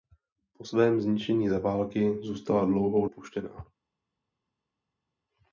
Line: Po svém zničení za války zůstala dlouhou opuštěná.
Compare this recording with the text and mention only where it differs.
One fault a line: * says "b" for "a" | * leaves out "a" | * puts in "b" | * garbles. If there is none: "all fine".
all fine